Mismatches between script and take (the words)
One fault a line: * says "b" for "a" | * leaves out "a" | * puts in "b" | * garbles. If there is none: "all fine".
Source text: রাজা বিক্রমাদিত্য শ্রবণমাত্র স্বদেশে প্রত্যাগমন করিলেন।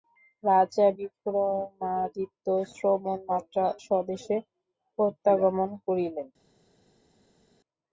all fine